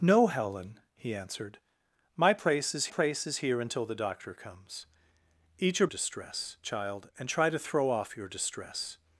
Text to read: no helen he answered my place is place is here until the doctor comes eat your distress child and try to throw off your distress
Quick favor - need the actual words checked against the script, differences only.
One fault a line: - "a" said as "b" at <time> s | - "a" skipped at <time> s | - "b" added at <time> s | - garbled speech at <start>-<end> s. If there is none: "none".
none